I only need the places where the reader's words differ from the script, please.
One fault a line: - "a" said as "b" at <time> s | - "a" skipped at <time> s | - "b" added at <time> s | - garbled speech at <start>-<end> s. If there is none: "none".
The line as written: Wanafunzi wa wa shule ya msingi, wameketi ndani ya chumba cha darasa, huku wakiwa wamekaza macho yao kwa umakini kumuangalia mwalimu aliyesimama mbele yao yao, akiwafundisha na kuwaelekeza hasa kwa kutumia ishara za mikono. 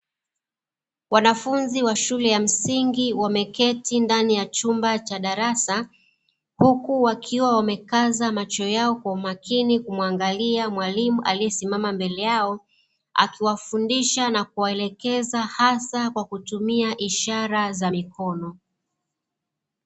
- "wa" skipped at 2.0 s
- "yao" skipped at 12.6 s